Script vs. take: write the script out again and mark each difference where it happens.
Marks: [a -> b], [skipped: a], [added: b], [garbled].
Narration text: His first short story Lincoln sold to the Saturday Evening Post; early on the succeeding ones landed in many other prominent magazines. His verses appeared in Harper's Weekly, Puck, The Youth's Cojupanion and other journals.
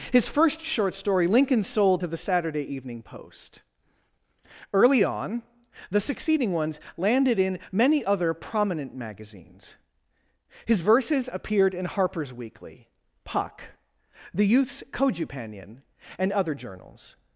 His first short story Lincoln sold to the Saturday Evening Post; early on the succeeding ones landed in many other prominent magazines. His verses appeared in Harper's Weekly, Puck, The Youth's Cojupanion and other journals.